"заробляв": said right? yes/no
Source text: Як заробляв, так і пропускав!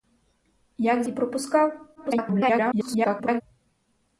no